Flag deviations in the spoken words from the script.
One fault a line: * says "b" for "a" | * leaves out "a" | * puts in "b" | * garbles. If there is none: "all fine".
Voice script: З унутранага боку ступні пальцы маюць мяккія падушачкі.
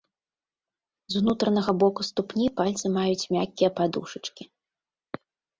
all fine